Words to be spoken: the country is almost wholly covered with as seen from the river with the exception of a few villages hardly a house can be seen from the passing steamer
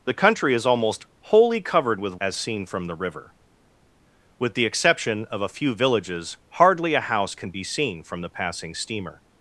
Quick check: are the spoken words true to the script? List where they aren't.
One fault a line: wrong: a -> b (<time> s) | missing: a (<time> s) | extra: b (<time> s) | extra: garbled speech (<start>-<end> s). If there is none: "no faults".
no faults